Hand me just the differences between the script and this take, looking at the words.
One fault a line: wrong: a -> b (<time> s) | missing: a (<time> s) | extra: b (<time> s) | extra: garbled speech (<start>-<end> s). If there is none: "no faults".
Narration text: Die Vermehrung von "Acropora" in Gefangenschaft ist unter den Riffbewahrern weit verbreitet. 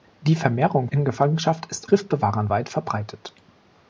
missing: von Acropora (0.9 s)
missing: unter den (1.9 s)